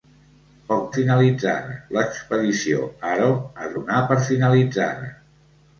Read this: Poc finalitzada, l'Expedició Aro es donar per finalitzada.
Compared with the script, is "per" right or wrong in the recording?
right